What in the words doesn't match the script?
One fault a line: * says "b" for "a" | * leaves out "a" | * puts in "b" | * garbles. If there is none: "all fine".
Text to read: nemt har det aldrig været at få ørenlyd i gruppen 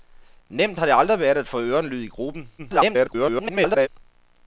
* garbles